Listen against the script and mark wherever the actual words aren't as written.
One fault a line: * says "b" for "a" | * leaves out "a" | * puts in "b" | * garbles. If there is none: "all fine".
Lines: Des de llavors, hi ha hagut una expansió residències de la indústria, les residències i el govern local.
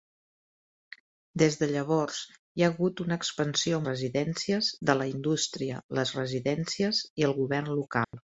all fine